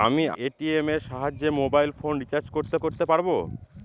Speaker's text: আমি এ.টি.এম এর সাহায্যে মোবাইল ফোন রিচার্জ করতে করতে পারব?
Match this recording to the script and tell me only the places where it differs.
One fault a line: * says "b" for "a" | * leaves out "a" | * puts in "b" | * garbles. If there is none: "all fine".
all fine